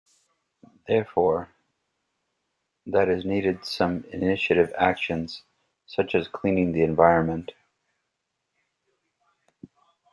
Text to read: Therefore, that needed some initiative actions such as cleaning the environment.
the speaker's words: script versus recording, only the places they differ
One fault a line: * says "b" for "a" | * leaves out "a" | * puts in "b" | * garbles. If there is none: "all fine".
* puts in "is"